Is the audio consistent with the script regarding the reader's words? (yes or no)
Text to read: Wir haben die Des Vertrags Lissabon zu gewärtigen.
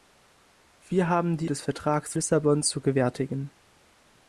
yes